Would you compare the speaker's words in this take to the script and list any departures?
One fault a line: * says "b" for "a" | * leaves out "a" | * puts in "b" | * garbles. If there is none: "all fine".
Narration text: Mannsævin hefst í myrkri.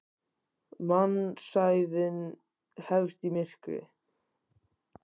all fine